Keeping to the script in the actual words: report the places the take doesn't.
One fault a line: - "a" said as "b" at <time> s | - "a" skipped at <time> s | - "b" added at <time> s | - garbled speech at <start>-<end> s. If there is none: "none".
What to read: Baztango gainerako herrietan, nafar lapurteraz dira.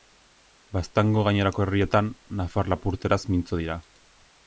- "mintzo" added at 3.4 s